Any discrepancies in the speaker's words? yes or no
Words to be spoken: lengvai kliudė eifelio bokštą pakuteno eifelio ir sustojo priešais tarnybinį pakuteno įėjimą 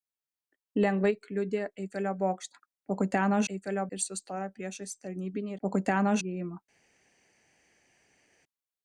no